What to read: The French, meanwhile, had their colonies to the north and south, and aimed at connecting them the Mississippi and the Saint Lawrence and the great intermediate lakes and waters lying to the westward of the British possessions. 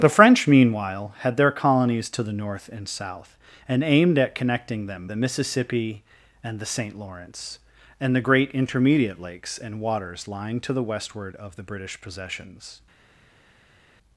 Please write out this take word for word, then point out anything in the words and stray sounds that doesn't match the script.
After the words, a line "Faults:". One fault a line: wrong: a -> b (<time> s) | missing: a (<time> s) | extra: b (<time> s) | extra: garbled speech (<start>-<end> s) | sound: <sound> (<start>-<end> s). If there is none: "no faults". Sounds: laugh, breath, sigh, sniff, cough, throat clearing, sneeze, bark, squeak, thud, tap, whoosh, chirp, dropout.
The French, meanwhile, had their colonies to the north and south, and aimed at connecting them the Mississippi and the Saint Lawrence and the great intermediate lakes and waters lying to the westward of the British possessions.
Faults:
no faults